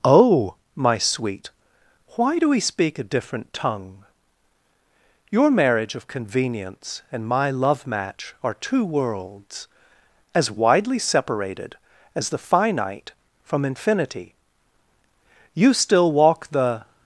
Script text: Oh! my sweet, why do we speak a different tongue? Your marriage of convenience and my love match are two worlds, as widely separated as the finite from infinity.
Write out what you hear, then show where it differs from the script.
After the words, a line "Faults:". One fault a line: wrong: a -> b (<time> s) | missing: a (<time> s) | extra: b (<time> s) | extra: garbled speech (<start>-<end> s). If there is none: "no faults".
Oh! my sweet, why do we speak a different tongue? Your marriage of convenience and my love match are two worlds, as widely separated as the finite from infinity. You still walk the
Faults:
extra: You still walk the (15.6 s)